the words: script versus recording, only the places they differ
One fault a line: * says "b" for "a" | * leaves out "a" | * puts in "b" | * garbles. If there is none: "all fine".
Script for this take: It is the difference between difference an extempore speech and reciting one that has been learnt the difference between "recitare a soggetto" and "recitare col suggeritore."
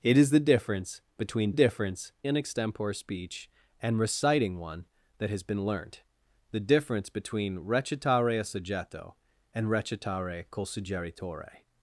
all fine